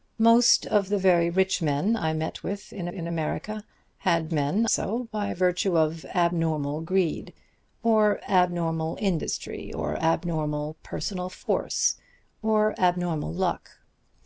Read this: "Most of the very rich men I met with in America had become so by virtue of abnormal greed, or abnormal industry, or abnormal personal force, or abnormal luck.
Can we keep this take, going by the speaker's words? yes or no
no